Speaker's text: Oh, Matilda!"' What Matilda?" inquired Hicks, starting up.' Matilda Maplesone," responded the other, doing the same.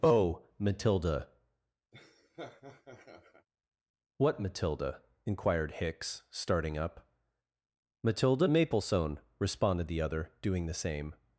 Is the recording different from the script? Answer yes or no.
no